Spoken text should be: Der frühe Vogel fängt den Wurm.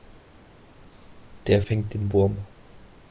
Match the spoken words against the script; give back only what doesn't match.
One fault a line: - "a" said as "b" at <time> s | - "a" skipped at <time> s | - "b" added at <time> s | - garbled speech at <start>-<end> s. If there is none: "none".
- "frühe Vogel" skipped at 1.6 s